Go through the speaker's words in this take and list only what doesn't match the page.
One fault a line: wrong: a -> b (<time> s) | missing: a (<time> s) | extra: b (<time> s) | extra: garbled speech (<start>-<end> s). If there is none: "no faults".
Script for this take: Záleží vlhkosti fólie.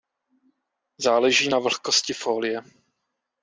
extra: na (1.5 s)